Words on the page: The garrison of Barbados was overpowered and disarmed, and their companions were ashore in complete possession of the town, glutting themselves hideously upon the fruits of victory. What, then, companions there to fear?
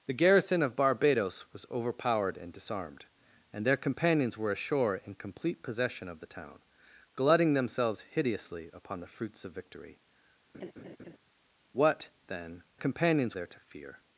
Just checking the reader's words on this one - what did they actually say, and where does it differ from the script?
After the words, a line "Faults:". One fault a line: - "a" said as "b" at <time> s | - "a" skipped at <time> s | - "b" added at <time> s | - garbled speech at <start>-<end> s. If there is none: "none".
The garrison of Barbados was overpowered and disarmed, and their companions were ashore in complete possession of the town, glutting themselves hideously upon the fruits of victory. What, then, companions there to fear?
Faults:
none